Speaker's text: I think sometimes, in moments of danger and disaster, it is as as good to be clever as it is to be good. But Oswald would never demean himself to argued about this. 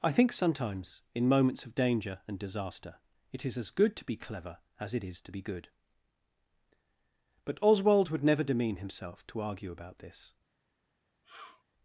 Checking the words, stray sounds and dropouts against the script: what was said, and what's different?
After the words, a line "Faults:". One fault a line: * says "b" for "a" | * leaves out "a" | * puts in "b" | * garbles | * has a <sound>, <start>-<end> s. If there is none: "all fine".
I think sometimes, in moments of danger and disaster, it is as good to be clever as it is to be good. But Oswald would never demean himself to argue about this.
Faults:
* leaves out "as"
* says "argue" for "argued"
* has a sniff, 11.2-11.6 s